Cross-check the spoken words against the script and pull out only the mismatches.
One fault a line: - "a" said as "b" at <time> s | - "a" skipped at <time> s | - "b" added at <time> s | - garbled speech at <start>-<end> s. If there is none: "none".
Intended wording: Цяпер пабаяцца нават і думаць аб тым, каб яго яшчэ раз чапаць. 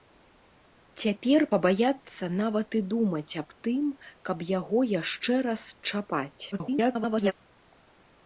- garbled speech at 6.5-7.3 s